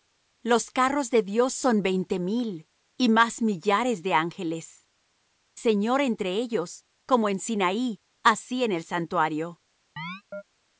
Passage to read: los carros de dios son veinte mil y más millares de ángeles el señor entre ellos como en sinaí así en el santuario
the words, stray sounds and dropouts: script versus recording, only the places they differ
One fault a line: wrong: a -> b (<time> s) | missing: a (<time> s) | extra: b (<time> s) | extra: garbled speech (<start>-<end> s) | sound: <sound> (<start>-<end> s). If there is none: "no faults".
missing: el (4.9 s)
sound: chirp (10.0-10.4 s)